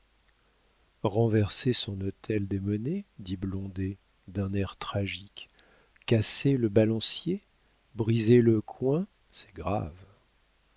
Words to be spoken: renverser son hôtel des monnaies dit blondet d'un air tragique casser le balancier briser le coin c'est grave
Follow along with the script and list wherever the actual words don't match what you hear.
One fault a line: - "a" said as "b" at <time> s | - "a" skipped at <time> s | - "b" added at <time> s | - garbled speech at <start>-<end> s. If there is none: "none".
none